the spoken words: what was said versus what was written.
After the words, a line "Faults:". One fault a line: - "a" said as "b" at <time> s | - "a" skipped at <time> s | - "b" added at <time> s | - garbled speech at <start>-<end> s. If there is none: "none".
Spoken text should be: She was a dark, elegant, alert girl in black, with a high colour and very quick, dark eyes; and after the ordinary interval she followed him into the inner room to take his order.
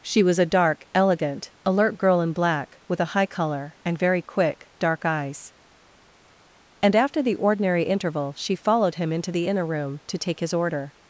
She was a dark, elegant, alert girl in black, with a high colour and very quick, dark eyes; and after the ordinary interval she followed him into the inner room to take his order.
Faults:
none